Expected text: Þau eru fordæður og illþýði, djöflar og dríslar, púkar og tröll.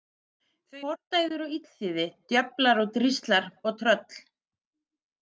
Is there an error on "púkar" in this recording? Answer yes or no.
yes